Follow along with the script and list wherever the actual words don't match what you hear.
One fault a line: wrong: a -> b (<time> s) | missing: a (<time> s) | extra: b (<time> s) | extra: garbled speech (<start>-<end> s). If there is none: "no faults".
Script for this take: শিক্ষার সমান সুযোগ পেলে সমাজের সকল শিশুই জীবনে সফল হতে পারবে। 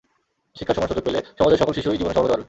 no faults